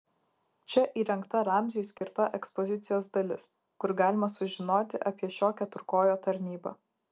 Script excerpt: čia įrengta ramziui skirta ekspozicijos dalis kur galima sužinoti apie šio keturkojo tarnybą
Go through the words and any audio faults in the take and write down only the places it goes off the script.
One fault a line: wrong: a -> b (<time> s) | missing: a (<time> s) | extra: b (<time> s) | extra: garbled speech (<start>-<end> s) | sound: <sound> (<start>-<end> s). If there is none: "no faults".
sound: dropout (2.0-2.0 s)